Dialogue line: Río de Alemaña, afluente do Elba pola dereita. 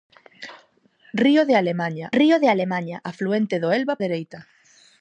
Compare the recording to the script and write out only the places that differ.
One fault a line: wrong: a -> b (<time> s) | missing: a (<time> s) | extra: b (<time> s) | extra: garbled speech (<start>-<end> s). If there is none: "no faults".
extra: río de Alemaña (2.2 s)
missing: pola (3.9 s)